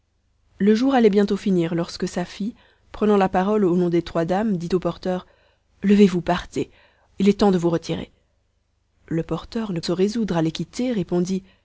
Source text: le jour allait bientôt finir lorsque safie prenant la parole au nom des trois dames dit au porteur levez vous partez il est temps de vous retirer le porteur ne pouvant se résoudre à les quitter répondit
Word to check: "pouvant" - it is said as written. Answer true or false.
false